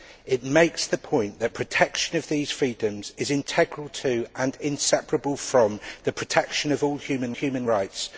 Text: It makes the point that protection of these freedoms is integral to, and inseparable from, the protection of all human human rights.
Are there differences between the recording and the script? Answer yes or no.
no